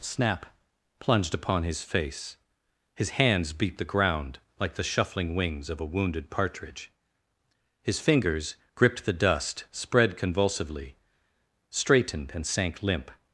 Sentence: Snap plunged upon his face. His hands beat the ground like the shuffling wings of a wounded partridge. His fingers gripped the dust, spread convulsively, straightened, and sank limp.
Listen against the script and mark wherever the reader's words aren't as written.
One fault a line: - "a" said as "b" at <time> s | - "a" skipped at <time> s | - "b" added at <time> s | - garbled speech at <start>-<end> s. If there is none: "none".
none